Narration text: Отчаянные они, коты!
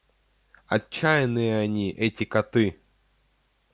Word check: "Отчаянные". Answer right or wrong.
right